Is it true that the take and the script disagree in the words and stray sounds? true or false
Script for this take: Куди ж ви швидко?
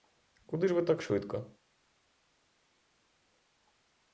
true